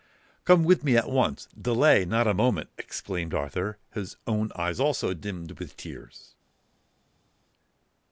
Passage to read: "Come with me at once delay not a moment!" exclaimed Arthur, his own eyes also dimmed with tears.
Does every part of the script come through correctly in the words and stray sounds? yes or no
yes